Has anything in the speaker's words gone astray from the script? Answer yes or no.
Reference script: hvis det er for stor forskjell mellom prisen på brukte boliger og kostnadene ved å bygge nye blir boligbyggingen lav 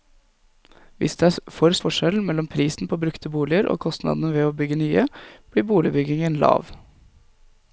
yes